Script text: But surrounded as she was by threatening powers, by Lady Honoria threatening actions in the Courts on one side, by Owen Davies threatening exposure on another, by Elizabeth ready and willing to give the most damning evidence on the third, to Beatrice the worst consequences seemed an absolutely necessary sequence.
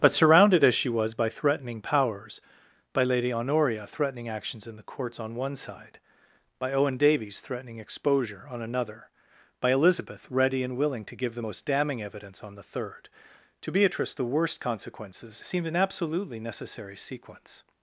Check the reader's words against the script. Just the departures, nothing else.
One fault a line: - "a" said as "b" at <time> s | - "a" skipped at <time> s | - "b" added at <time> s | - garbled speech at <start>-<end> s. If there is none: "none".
none